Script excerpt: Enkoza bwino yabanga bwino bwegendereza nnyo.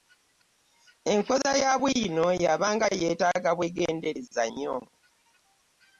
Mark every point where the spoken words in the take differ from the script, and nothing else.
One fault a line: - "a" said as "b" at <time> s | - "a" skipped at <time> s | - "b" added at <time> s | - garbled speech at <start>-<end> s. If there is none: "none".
- "ya" added at 1.6 s
- "bwino" said as "yeetaaga" at 3.0 s